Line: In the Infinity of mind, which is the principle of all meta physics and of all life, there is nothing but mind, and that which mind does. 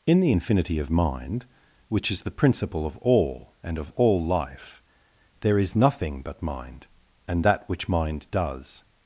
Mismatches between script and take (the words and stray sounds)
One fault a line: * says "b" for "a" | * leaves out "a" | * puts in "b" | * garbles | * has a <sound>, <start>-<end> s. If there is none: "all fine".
* leaves out "meta physics"